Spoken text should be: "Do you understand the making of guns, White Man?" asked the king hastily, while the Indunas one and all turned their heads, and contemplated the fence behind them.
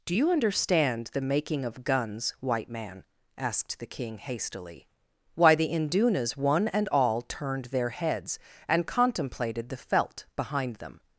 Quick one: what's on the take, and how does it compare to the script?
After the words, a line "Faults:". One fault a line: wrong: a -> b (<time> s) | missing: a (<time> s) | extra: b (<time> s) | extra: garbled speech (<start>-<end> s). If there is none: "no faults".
"Do you understand the making of guns, White Man?" asked the king hastily, why the Indunas one and all turned their heads, and contemplated the felt behind them.
Faults:
wrong: while -> why (5.3 s)
wrong: fence -> felt (9.8 s)